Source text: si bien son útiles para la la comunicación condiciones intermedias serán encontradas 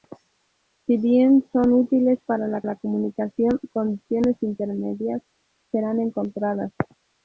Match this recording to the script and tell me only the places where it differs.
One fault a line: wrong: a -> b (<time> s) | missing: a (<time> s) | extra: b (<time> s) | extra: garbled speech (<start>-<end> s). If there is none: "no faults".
no faults